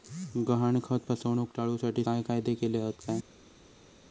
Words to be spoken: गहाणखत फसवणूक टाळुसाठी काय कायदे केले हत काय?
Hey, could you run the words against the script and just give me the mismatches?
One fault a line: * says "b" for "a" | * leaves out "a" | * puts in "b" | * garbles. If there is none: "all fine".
all fine